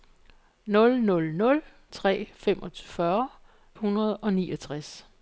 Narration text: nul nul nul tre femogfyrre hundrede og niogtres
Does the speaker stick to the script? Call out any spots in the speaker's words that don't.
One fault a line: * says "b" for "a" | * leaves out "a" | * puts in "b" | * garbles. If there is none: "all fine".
all fine